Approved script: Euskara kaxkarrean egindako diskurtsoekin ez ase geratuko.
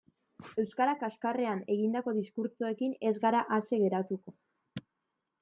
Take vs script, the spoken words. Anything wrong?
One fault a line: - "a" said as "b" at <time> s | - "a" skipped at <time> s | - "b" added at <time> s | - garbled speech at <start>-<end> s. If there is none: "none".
- "gara" added at 3.3 s